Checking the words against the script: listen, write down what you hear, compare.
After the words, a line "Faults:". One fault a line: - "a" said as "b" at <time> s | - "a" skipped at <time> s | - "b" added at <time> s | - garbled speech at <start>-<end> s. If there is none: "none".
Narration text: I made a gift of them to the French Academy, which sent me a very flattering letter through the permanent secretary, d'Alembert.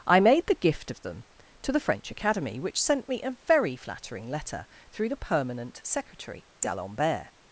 I made the gift of them to the French Academy, which sent me a very flattering letter through the permanent secretary, d'Alembert.
Faults:
- "a" said as "the" at 0.5 s